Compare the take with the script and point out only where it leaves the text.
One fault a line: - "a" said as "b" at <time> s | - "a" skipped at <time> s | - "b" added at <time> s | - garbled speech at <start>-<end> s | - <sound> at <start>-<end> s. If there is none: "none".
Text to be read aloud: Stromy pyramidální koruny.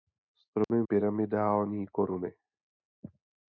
- dropout at 0.6-0.7 s